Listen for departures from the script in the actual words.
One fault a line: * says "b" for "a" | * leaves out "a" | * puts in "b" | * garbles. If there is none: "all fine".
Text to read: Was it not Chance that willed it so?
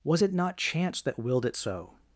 all fine